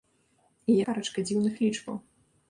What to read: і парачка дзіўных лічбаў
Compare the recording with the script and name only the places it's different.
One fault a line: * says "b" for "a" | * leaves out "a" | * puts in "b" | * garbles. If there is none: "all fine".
all fine